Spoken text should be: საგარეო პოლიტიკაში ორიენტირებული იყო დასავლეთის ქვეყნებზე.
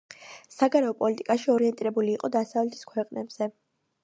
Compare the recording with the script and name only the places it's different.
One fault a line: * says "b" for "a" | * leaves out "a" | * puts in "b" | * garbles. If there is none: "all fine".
all fine